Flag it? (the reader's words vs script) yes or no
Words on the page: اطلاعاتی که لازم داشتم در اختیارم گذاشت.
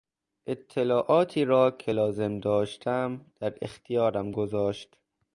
yes